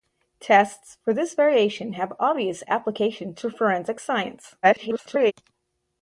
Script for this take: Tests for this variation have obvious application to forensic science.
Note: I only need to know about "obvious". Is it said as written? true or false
true